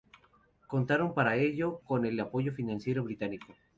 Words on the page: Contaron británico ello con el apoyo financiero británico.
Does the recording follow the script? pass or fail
fail